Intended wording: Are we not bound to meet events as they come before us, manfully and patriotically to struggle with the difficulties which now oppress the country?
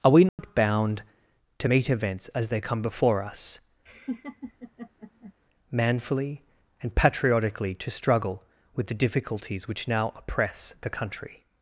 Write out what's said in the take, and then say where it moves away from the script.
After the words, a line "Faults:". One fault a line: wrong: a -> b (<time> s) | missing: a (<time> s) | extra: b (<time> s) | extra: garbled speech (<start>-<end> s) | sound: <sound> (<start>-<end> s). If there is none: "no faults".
Are we not bound to meet events as they come before us, manfully and patriotically to struggle with the difficulties which now oppress the country?
Faults:
sound: dropout (0.3-0.4 s)
sound: laugh (3.9-5.3 s)